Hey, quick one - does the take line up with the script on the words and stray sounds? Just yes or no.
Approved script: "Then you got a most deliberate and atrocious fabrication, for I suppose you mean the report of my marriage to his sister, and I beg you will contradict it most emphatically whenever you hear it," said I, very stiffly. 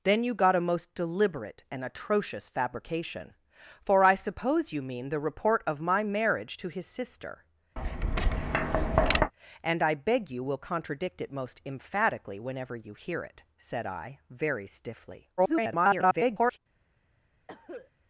no